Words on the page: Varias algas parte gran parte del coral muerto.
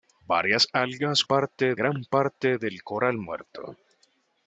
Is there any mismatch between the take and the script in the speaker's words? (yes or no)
no